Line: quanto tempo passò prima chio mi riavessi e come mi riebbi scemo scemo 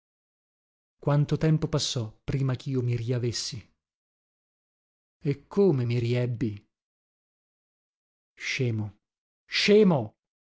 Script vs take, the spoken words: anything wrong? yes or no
no